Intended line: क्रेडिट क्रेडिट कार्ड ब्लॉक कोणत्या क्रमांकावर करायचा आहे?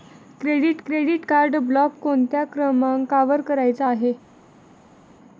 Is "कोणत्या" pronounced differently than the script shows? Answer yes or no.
no